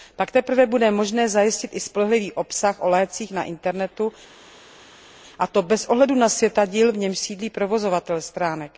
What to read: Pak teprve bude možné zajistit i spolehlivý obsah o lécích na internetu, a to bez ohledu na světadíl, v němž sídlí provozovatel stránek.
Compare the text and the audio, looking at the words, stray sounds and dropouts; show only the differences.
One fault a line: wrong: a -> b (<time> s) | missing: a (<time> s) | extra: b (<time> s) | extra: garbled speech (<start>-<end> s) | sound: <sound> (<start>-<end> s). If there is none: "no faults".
no faults